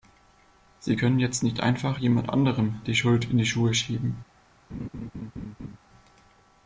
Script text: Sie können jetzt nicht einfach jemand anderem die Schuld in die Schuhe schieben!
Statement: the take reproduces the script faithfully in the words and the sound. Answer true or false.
false